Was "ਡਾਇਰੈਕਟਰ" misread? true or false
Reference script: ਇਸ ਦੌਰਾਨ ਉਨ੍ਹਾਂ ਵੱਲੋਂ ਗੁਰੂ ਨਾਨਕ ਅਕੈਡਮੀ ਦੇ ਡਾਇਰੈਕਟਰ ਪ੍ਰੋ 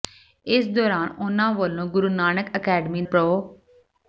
true